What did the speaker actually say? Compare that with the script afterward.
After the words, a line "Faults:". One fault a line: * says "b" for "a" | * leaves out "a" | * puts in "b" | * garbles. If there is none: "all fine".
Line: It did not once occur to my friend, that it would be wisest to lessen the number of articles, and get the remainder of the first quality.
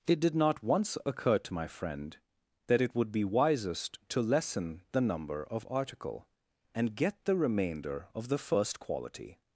It did not once occur to my friend, that it would be wisest to lessen the number of article, and get the remainder of the first quality.
Faults:
* says "article" for "articles"